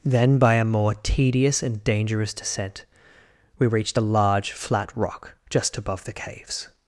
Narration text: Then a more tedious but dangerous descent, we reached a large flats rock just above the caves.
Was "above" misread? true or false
false